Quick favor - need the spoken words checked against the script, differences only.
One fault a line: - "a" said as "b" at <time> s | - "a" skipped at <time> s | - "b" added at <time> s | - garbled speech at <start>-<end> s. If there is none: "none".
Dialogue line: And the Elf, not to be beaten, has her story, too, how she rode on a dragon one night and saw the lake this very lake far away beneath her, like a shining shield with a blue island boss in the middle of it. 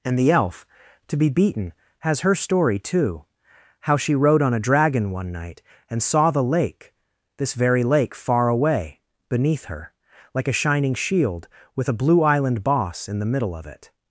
- "not" skipped at 0.7 s